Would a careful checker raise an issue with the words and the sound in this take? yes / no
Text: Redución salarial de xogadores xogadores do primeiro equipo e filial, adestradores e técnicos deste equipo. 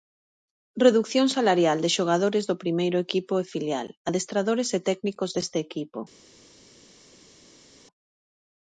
yes